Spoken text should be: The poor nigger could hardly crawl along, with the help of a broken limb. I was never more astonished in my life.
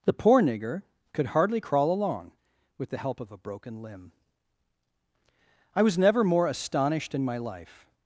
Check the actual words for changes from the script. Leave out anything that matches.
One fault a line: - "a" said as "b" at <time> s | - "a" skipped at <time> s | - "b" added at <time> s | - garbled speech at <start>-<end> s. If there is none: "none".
none